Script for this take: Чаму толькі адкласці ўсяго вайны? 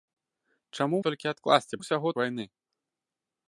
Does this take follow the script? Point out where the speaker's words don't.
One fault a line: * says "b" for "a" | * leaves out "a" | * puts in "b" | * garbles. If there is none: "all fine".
all fine